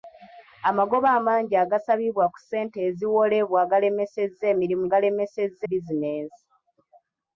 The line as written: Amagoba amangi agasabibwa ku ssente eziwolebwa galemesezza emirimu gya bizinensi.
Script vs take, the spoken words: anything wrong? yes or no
yes